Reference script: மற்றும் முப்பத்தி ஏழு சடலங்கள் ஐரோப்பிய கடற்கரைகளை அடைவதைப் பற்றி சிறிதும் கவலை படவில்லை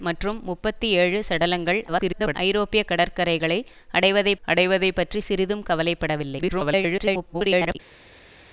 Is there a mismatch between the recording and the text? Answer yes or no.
yes